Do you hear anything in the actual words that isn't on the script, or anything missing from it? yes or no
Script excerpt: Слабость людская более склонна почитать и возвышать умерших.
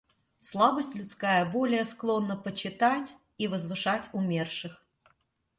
no